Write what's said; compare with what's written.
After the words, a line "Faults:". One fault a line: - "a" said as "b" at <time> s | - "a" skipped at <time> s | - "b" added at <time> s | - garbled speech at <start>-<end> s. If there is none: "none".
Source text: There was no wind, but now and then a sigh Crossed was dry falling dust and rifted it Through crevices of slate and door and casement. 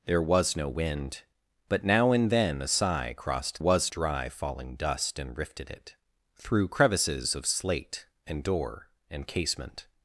There was no wind, but now and then a sigh Crossed was dry falling dust and rifted it Through crevices of slate and door and casement.
Faults:
none